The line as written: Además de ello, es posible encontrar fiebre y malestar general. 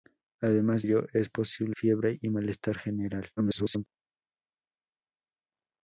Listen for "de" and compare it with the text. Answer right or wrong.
wrong